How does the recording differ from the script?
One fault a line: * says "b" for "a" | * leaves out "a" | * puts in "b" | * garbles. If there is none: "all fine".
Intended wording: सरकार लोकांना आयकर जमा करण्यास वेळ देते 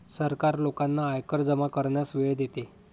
all fine